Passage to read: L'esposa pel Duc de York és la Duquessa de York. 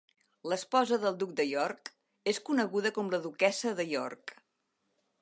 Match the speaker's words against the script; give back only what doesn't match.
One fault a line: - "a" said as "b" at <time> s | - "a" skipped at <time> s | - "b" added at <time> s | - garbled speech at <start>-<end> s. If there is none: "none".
- "pel" said as "del" at 1.0 s
- "coneguda com" added at 2.5 s